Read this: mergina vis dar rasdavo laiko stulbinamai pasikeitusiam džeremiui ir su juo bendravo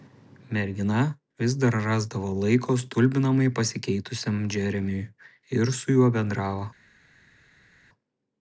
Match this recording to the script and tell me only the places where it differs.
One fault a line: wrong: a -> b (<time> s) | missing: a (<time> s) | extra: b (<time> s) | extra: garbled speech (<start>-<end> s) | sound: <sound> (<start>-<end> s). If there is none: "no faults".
no faults